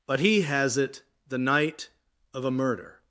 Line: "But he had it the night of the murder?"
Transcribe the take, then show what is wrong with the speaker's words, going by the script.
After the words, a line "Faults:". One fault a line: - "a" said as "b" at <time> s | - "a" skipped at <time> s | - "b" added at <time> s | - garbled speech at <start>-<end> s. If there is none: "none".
"But he has it the night of a murder?"
Faults:
- "had" said as "has" at 0.4 s
- "the" said as "a" at 2.5 s